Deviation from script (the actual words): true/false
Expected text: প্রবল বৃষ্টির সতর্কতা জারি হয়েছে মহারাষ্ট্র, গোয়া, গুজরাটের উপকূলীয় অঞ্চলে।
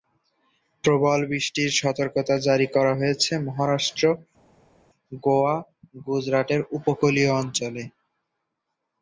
true